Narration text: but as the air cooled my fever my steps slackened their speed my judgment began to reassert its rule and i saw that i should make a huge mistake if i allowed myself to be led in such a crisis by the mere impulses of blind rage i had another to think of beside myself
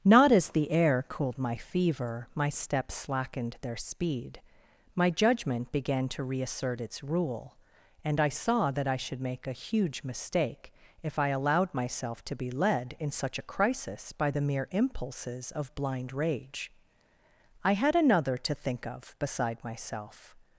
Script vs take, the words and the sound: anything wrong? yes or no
yes